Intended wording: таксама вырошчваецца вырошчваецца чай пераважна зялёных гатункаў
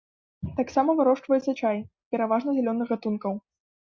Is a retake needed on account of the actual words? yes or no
yes